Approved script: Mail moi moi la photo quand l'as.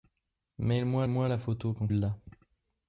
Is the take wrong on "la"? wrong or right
right